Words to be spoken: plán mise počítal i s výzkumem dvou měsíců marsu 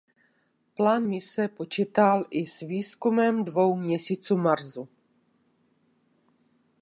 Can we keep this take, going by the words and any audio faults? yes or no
yes